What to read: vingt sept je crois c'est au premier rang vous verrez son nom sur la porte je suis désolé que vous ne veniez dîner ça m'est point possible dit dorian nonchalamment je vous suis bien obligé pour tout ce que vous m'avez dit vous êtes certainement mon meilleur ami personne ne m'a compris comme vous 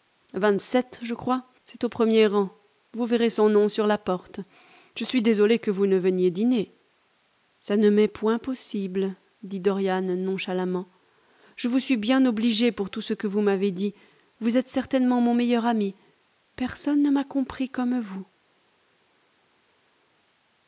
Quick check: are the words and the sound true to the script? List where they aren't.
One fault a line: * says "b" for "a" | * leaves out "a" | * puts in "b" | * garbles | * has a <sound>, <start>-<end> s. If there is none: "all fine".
* puts in "ne"